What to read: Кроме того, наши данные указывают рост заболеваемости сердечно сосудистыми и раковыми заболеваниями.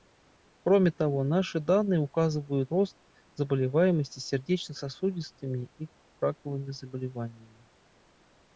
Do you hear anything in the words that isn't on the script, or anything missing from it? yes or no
no